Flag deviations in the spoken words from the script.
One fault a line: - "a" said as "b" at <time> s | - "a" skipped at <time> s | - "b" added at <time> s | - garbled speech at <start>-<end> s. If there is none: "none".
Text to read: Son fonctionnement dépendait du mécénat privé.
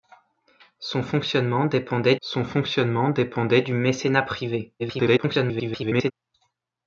- "son fonctionnement dépendait" added at 2.2 s
- garbled speech at 4.8-6.1 s